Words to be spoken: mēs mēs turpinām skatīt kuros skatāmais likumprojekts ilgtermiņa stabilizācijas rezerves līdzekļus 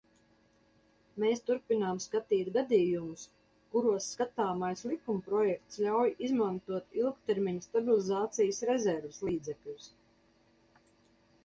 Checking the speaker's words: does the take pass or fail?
fail